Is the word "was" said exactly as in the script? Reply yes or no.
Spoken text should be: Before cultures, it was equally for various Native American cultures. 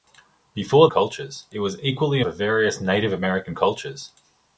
yes